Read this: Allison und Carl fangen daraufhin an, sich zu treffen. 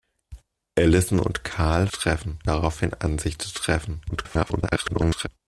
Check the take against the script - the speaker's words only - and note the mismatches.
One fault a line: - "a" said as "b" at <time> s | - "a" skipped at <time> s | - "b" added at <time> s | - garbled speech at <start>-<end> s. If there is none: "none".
- "fangen" said as "treffen" at 1.9 s
- garbled speech at 4.1-5.3 s